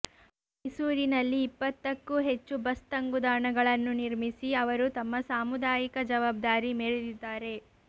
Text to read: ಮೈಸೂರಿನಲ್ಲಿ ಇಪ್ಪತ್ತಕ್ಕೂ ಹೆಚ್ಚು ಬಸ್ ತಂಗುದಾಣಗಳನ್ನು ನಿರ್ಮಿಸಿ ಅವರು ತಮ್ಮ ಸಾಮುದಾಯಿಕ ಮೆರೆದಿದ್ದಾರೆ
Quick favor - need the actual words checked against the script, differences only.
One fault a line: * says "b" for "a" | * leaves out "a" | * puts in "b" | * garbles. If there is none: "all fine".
* puts in "ಜವಾಬ್ದಾರಿ"